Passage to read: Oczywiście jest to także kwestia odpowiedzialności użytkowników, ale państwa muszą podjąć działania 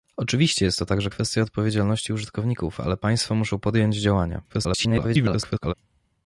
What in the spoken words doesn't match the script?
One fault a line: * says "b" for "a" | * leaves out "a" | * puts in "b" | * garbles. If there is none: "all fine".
* garbles